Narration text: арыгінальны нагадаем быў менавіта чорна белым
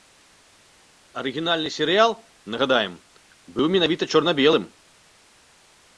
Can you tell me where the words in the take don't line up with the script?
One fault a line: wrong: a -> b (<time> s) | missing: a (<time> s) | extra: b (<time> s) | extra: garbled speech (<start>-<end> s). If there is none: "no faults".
extra: серыял (1.8 s)